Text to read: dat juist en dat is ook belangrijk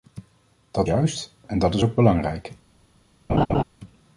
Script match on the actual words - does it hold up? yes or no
yes